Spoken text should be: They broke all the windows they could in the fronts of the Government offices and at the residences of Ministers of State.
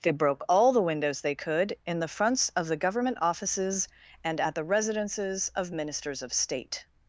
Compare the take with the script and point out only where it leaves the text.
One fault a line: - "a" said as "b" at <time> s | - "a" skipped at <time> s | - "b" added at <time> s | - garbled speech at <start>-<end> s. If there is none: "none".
none